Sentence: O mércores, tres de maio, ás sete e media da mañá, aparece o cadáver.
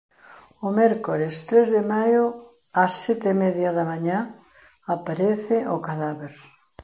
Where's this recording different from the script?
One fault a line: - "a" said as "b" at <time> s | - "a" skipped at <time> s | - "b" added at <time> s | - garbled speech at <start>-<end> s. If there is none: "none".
none